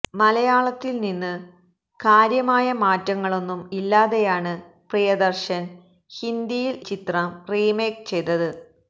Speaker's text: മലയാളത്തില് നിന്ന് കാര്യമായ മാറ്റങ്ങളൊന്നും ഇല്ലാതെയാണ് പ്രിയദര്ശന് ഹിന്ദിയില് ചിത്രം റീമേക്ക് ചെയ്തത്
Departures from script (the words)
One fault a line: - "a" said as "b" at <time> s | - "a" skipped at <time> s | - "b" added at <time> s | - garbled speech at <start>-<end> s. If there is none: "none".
none